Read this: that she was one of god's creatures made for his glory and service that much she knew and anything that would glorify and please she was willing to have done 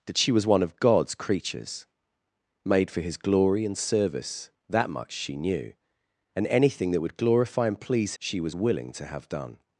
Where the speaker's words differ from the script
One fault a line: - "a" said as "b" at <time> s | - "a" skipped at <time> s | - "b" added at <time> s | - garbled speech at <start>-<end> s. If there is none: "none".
none